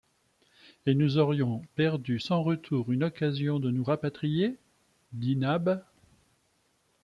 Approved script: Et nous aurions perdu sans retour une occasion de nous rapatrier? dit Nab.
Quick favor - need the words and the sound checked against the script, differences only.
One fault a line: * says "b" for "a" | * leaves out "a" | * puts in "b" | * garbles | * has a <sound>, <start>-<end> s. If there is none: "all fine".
all fine